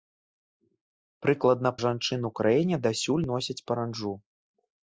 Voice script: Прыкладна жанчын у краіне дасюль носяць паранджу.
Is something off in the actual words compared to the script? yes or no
no